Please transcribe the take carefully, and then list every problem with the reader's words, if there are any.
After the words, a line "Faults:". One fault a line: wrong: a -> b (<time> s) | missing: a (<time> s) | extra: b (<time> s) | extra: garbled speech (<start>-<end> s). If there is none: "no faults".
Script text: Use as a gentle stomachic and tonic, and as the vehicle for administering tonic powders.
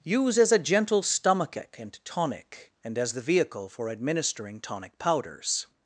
Use as a gentle stomachic and tonic, and as the vehicle for administering tonic powders.
Faults:
no faults